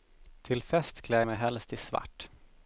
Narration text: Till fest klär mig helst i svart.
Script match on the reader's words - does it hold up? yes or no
yes